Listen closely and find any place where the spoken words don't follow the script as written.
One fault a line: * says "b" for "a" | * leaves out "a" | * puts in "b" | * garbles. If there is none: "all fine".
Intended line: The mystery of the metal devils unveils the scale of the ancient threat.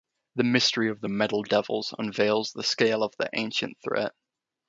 all fine